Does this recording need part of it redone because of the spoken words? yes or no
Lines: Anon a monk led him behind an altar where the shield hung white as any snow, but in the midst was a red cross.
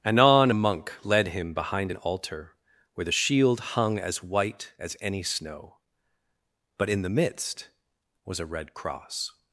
yes